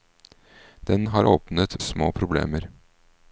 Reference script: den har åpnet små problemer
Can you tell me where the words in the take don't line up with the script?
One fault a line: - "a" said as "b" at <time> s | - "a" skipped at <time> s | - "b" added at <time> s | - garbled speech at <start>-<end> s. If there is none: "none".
none